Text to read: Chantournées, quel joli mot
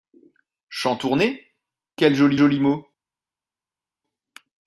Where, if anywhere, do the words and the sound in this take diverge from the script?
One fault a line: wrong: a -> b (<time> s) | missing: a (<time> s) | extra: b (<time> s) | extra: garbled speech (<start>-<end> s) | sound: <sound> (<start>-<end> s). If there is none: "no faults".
extra: joli (2.4 s)